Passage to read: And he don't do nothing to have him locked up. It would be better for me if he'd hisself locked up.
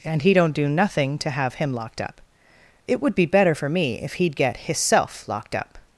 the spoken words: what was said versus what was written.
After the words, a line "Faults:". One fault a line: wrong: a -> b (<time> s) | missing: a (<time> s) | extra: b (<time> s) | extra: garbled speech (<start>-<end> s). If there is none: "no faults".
And he don't do nothing to have him locked up. It would be better for me if he'd get hisself locked up.
Faults:
extra: get (4.4 s)